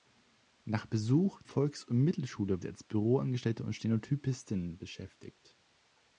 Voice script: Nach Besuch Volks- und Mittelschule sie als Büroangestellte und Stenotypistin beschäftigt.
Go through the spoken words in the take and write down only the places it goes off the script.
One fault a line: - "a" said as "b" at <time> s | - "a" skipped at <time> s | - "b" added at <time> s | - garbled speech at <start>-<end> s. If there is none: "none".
none